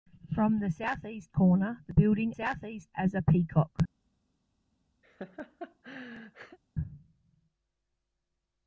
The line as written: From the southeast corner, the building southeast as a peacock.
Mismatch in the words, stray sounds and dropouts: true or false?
true